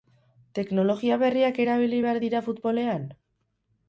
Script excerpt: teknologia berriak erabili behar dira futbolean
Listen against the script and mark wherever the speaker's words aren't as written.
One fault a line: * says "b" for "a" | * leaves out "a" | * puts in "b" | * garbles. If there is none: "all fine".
all fine